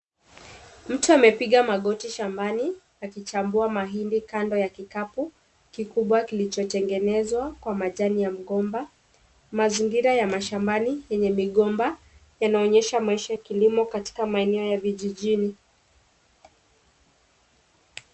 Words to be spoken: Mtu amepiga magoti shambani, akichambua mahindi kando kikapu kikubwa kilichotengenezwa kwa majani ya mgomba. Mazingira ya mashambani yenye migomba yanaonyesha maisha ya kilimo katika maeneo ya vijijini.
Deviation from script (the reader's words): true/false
true